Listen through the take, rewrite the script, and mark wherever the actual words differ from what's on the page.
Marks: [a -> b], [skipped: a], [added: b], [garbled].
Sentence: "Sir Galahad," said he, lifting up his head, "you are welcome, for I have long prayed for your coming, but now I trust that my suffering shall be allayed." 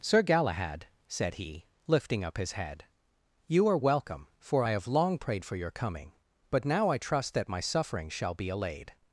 "Sir Galahad," said he, lifting up his head, "you are welcome, for I have long prayed for your coming, but now I trust that my suffering shall be allayed."